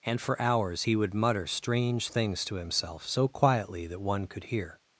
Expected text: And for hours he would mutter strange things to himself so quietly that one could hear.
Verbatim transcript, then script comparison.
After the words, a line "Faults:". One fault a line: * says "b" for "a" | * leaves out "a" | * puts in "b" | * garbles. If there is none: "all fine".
And for hours he would mutter strange things to himself so quietly that one could hear.
Faults:
all fine